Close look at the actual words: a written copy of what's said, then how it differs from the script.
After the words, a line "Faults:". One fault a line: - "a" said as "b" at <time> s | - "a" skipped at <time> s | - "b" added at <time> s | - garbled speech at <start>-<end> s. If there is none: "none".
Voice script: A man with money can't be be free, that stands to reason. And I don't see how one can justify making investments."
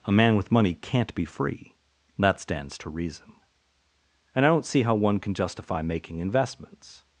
A man with money can't be free, that stands to reason. And I don't see how one can justify making investments."
Faults:
- "be" skipped at 1.2 s